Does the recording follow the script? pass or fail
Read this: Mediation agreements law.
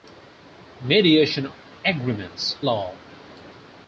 pass